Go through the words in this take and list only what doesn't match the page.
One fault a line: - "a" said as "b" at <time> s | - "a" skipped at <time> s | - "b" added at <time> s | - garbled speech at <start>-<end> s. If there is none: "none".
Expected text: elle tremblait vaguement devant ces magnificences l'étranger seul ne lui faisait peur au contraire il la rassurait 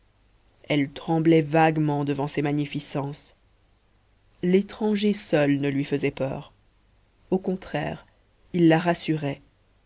none